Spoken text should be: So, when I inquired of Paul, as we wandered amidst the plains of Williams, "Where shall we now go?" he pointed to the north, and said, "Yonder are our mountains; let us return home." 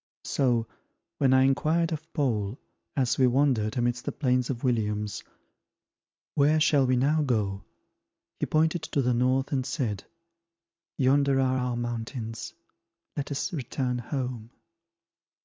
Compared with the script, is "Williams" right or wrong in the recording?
right